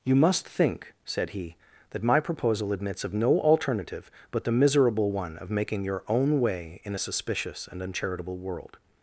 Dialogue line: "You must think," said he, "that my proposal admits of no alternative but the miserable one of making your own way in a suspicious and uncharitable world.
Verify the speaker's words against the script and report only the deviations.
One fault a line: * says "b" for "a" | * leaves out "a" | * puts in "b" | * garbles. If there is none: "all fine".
all fine